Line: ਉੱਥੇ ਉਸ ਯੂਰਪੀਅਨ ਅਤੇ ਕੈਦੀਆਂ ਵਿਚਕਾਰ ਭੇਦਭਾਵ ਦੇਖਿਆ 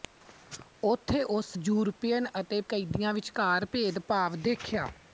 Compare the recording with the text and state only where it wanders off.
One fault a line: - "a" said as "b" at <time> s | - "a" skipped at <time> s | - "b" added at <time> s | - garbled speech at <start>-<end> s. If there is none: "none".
none